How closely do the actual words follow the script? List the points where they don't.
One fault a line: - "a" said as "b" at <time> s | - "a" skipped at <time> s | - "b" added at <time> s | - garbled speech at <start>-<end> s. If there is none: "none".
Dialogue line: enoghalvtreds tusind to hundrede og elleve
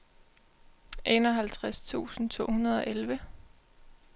none